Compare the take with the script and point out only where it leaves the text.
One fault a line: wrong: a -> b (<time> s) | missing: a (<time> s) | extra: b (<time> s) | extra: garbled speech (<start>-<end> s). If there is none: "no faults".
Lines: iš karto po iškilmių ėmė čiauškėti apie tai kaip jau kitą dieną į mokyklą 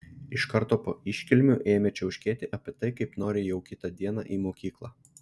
extra: nori (3.2 s)